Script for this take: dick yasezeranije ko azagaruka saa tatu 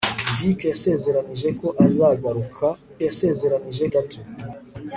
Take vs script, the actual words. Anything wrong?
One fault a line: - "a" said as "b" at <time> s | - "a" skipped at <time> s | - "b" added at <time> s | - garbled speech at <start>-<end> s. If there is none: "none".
- "saa" said as "yasezeranije" at 3.1 s